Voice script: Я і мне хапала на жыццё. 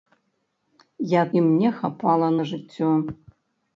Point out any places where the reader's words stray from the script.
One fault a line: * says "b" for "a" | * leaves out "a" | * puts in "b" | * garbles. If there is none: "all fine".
all fine